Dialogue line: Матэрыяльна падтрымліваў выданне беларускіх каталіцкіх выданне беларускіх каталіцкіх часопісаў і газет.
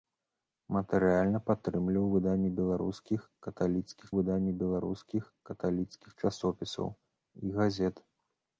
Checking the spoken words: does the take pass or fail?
pass